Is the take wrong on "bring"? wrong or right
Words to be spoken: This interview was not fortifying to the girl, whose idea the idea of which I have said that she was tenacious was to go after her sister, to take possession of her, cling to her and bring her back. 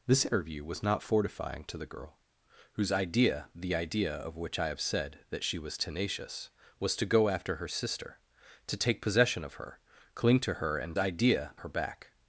wrong